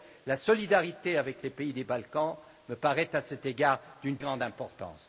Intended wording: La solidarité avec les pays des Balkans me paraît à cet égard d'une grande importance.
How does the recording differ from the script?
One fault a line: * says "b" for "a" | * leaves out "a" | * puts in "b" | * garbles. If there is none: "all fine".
all fine